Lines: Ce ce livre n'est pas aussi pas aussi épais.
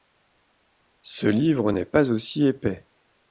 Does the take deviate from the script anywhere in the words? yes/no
yes